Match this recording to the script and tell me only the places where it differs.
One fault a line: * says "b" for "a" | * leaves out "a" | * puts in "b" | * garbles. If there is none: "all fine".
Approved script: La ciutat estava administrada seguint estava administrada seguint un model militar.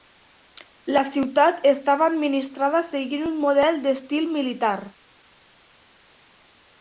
* leaves out "estava administrada seguint"
* puts in "d'estil"